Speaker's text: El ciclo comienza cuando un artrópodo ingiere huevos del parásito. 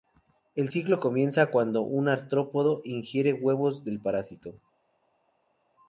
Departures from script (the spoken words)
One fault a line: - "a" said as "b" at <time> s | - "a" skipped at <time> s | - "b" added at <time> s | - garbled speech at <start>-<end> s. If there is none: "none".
none